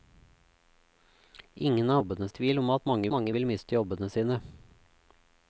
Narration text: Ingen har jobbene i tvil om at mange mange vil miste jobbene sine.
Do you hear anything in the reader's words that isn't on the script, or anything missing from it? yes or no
no